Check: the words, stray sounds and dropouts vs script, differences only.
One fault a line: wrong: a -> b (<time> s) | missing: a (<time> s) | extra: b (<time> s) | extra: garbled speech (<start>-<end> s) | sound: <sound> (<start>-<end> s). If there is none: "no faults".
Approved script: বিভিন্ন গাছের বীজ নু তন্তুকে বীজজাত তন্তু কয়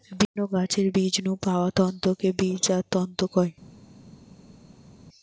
extra: পাওয়া (1.4 s)